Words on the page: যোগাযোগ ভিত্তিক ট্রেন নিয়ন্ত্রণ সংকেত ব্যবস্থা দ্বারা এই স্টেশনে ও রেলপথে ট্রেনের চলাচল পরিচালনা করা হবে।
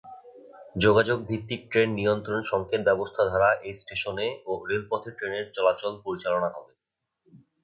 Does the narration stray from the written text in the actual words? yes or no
yes